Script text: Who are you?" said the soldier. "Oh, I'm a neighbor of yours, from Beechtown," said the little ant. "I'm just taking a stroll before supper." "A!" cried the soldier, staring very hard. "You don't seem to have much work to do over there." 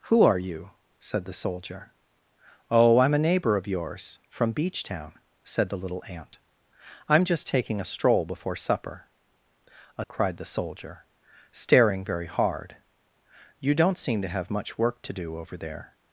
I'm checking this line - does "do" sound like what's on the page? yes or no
yes